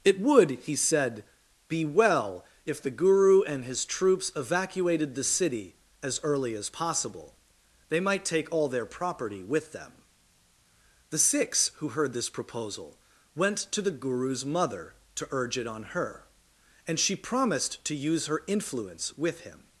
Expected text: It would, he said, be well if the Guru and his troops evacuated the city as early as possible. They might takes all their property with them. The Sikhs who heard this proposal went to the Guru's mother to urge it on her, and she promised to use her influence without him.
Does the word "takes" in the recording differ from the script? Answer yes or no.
yes